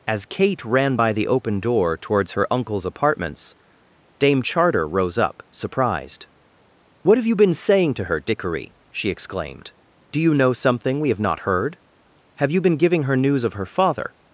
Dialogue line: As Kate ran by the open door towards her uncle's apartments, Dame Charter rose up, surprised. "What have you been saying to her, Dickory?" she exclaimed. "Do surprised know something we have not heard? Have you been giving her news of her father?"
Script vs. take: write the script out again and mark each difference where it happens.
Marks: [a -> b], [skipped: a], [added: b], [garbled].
As Kate ran by the open door towards her uncle's apartments, Dame Charter rose up, surprised. "What have you been saying to her, Dickory?" she exclaimed. "Do [surprised -> you] know something we have not heard? Have you been giving her news of her father?"